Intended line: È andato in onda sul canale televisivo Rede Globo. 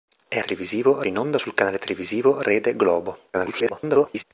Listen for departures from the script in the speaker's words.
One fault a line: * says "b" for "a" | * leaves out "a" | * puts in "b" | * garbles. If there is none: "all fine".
* says "televisivo" for "andato"
* garbles